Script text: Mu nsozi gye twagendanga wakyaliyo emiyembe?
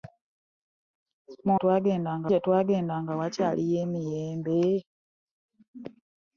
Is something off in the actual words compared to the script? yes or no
yes